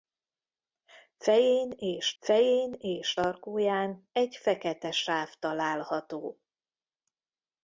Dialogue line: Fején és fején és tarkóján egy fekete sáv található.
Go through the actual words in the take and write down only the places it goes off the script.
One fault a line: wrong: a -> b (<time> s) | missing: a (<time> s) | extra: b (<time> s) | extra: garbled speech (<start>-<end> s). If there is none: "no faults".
no faults